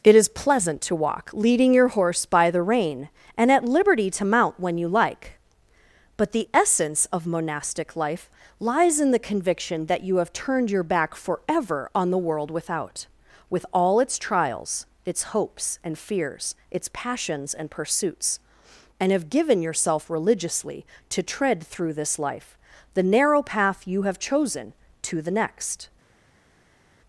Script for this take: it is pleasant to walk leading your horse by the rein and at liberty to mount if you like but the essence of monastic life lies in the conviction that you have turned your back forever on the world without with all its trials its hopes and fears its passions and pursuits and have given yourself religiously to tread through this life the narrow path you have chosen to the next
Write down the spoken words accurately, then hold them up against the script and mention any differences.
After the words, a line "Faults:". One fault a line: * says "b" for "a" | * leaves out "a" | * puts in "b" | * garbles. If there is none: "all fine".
it is pleasant to walk leading your horse by the rein and at liberty to mount when you like but the essence of monastic life lies in the conviction that you have turned your back forever on the world without with all its trials its hopes and fears its passions and pursuits and have given yourself religiously to tread through this life the narrow path you have chosen to the next
Faults:
* says "when" for "if"